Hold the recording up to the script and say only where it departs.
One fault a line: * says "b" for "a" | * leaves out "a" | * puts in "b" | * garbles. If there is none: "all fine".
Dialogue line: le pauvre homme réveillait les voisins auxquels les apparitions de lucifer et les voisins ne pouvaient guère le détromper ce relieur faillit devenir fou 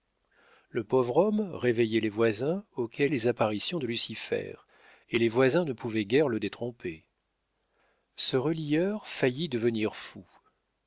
all fine